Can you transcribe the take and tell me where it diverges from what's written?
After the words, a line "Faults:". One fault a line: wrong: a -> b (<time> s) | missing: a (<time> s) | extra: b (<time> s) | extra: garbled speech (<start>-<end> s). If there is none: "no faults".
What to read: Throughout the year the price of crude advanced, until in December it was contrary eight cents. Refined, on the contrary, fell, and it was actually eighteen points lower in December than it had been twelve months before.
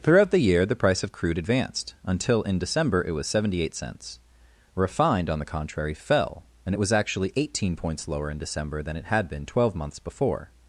Throughout the year the price of crude advanced, until in December it was seventy eight cents. Refined, on the contrary, fell, and it was actually eighteen points lower in December than it had been twelve months before.
Faults:
wrong: contrary -> seventy (3.3 s)